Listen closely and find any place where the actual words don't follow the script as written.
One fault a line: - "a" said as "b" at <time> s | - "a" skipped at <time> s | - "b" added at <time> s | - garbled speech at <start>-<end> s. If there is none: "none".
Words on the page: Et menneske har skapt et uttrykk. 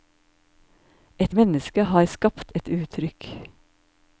none